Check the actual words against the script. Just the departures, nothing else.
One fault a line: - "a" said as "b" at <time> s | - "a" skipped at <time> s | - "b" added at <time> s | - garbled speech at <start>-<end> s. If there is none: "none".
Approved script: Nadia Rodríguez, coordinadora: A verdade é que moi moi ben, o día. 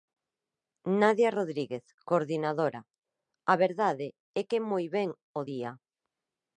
- "moi" skipped at 4.8 s